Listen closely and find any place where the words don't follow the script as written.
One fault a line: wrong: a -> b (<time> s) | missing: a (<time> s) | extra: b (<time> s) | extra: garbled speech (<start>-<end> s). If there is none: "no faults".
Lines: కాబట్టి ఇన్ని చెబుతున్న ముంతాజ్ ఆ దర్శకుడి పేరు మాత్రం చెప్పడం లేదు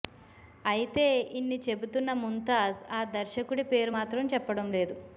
wrong: కాబట్టి -> అయితే (0.7 s)